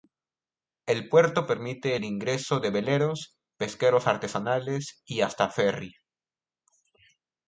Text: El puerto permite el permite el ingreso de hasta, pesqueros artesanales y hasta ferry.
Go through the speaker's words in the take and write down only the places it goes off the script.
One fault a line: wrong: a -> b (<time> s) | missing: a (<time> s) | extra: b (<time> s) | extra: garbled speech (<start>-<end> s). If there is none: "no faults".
missing: permite el (2.0 s)
wrong: hasta -> veleros (2.7 s)